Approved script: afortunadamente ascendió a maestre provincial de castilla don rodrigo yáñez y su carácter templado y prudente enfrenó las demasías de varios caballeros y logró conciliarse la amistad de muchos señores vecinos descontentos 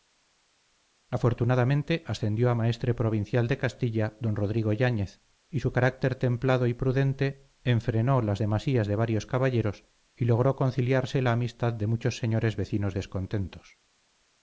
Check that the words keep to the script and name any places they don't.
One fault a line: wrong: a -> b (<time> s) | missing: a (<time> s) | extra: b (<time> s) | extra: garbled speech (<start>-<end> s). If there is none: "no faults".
no faults